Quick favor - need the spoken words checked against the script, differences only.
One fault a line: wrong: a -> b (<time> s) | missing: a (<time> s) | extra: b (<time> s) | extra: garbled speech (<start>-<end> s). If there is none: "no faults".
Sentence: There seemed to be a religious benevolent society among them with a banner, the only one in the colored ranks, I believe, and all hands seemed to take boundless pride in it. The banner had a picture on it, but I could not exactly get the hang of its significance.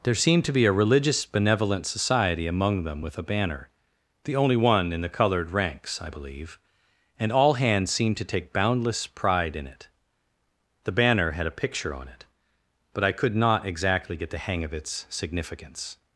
no faults